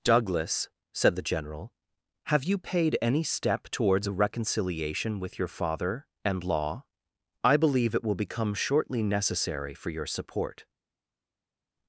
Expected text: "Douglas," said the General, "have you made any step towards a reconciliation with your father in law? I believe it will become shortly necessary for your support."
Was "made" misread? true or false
true